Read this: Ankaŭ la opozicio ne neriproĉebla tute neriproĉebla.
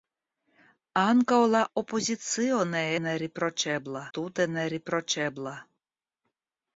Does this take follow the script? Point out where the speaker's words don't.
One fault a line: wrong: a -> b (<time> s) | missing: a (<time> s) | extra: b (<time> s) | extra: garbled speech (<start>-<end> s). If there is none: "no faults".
no faults